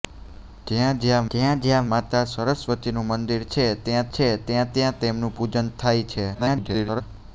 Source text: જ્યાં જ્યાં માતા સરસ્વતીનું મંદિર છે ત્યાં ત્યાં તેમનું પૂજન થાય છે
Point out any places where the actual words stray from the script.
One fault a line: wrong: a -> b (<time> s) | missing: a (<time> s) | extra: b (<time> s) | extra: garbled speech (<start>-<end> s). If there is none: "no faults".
extra: જ્યાં જ્યાં (1.3 s)
extra: છે ત્યાં (4.1 s)
extra: garbled speech (6.3-7.0 s)